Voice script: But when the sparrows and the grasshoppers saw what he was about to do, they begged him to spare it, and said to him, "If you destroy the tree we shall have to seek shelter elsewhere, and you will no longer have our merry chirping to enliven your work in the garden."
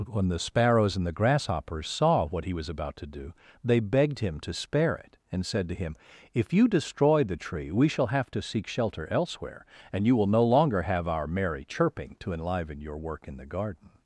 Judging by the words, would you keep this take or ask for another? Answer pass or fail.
fail